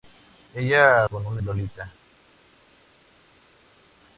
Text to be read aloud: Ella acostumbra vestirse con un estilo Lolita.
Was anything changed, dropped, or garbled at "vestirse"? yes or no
yes